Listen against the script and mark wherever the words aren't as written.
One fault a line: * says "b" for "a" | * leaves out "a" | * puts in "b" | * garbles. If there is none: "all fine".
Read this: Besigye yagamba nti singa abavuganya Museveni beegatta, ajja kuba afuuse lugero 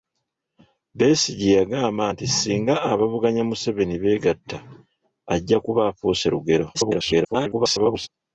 * garbles